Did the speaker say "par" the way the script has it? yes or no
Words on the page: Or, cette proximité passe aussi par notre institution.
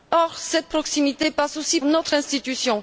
no